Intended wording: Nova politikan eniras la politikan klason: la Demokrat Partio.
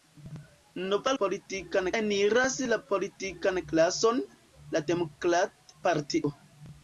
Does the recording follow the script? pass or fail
pass